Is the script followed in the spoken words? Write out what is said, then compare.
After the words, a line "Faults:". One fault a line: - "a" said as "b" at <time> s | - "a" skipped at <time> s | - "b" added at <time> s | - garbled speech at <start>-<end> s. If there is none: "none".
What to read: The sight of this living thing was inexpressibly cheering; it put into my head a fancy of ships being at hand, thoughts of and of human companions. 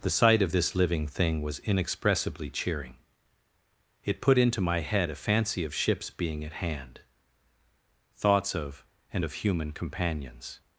The sight of this living thing was inexpressibly cheering; it put into my head a fancy of ships being at hand, thoughts of and of human companions.
Faults:
none